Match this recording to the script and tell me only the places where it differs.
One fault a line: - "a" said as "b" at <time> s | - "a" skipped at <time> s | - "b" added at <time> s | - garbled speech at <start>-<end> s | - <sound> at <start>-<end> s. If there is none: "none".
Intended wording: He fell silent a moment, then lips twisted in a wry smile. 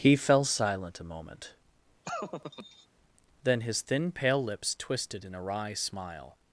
- laugh at 2.0-2.9 s
- "his thin pale" added at 3.6 s